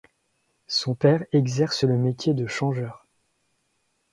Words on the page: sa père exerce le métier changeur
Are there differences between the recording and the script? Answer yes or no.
yes